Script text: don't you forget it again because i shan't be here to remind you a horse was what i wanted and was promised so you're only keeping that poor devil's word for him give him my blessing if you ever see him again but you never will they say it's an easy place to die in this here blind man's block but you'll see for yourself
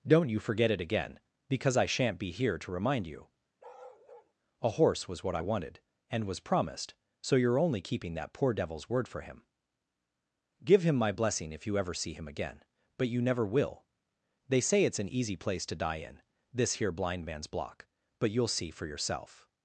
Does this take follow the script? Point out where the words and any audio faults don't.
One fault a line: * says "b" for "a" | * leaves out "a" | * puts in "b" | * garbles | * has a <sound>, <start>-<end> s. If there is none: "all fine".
* has a bark, 3.6-4.3 s